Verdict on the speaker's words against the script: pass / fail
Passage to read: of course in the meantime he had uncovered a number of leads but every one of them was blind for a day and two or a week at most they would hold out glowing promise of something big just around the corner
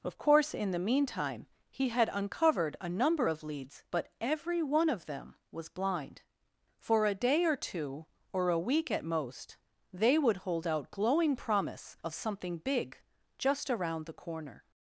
fail